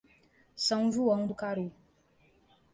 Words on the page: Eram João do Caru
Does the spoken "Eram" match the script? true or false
false